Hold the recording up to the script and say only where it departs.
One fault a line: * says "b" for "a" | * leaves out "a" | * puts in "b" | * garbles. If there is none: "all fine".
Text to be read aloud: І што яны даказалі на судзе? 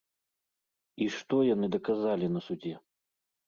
all fine